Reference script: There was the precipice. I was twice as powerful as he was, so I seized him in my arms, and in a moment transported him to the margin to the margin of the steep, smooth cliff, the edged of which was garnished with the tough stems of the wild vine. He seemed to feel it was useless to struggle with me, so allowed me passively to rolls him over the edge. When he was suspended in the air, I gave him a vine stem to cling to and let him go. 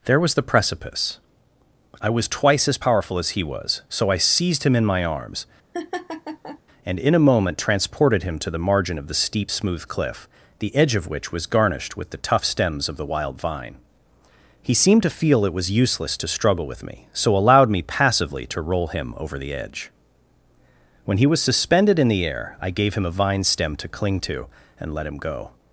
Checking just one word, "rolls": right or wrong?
wrong